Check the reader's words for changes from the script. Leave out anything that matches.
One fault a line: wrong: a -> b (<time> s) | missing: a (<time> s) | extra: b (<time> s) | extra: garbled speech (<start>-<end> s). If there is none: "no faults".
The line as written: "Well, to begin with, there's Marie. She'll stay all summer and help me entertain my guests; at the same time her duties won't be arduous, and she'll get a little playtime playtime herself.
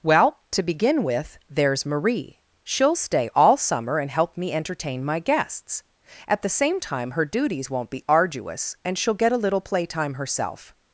missing: playtime (10.1 s)